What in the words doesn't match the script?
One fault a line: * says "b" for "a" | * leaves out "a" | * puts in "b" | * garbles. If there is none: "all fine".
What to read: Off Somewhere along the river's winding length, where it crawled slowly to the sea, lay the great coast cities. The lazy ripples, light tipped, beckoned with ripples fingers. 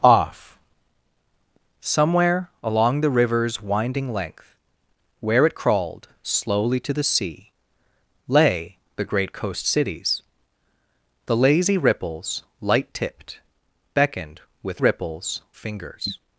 all fine